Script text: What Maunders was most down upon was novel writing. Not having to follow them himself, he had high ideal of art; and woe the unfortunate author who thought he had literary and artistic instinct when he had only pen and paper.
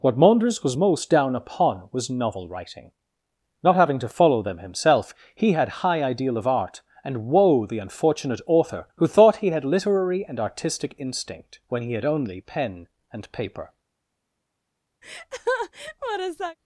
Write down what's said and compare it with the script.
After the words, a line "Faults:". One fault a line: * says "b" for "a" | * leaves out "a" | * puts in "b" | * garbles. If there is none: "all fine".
What Maunders was most down upon was novel writing. Not having to follow them himself, he had high ideal of art; and woe the unfortunate author who thought he had literary and artistic instinct when he had only pen and paper.
Faults:
all fine